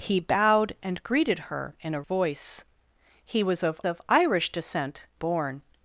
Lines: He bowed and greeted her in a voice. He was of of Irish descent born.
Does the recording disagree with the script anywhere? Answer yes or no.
no